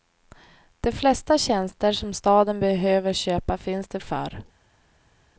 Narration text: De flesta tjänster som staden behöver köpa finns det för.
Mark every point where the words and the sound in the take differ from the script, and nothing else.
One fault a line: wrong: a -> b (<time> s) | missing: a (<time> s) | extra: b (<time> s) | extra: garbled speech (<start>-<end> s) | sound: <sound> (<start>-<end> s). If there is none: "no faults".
no faults